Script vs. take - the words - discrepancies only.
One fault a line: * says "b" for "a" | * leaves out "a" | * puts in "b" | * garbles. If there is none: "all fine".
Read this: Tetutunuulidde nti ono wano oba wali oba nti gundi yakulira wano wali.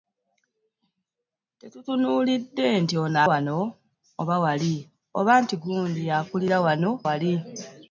all fine